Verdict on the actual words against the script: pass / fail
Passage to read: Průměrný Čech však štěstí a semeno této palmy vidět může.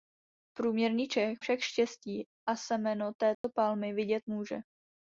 pass